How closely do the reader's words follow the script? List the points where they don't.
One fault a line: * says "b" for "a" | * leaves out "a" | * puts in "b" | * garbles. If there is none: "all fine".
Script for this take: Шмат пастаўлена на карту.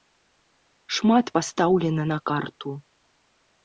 all fine